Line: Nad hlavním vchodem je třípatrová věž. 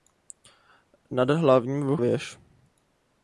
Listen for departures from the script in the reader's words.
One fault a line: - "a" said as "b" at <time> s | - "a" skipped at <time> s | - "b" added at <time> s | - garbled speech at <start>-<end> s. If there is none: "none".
- "vchodem je třípatrová" skipped at 2.0 s